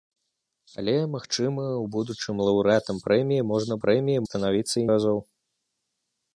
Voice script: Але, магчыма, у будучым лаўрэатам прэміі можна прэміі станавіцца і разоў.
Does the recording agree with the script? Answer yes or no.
yes